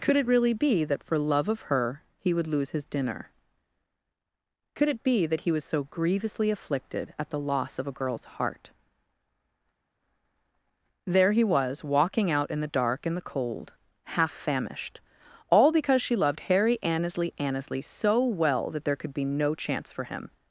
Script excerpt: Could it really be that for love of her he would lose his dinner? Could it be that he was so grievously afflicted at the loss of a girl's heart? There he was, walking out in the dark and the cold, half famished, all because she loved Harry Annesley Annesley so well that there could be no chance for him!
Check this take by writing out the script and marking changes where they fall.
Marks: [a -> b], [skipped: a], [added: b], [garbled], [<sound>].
Could it really be that for love of her he would lose his dinner? Could it be that he was so grievously afflicted at the loss of a girl's heart? There he was, walking out in the dark and the cold, half famished, all because she loved Harry Annesley Annesley so well that there could be no chance for him!